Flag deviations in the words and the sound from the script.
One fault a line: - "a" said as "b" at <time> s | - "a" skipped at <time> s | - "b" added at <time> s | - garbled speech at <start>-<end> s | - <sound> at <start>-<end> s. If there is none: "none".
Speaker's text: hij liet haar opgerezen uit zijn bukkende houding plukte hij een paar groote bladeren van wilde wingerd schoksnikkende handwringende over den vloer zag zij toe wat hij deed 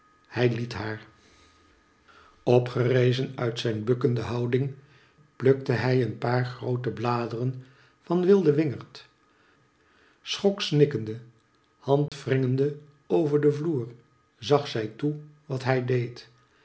- dropout at 12.1-12.1 s